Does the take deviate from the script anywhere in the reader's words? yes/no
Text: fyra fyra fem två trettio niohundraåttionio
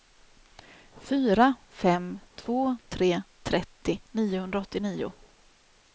yes